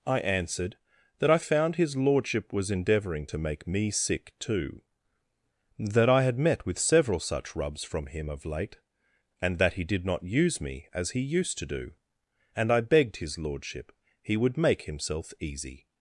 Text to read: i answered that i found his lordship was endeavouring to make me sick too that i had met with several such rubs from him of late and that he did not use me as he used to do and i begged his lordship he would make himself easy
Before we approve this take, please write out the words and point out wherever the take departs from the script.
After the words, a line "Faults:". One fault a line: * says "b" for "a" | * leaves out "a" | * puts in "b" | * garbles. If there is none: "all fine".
i answered that i found his lordship was endeavouring to make me sick too that i had met with several such rubs from him of late and that he did not use me as he used to do and i begged his lordship he would make himself easy
Faults:
all fine